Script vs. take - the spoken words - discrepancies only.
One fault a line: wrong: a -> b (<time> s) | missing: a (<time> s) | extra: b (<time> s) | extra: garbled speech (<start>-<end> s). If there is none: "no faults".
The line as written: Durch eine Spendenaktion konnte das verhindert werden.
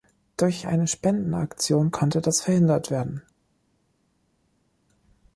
no faults